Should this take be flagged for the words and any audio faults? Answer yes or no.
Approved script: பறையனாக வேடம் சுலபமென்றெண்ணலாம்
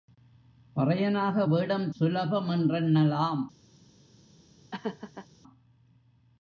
yes